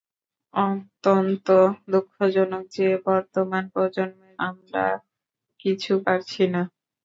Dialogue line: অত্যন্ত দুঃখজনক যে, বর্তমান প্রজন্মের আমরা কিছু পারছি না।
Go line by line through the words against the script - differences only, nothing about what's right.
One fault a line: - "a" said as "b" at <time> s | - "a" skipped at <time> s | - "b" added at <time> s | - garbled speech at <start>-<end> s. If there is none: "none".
none